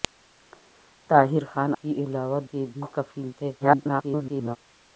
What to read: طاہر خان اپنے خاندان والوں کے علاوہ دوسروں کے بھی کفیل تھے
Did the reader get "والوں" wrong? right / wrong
wrong